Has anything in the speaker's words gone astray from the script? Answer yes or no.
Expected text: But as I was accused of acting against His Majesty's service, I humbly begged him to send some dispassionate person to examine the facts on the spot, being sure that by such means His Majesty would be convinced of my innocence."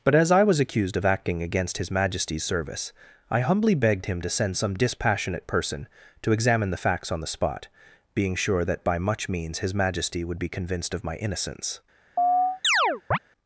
yes